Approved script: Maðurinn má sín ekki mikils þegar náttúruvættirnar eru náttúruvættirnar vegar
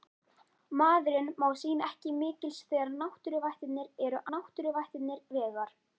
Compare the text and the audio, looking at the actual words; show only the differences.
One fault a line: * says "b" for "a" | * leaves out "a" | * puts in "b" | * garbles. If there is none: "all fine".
all fine